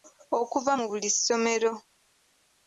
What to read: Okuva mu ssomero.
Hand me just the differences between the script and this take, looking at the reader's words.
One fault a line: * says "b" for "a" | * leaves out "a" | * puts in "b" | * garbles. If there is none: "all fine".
* puts in "buli"